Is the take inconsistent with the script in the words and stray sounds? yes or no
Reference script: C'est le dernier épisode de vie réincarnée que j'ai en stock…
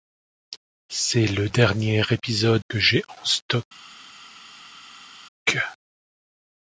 yes